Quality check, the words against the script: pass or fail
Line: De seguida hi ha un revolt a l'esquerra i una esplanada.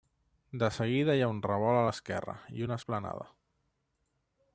pass